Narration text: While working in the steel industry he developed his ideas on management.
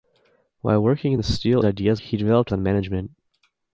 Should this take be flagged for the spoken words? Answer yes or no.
yes